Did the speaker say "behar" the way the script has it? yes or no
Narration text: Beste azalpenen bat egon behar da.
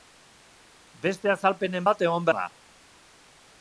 no